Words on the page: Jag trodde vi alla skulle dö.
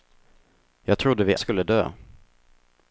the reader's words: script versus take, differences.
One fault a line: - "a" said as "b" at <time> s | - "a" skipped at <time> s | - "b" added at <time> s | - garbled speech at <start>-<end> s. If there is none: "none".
- "alla" skipped at 1.4 s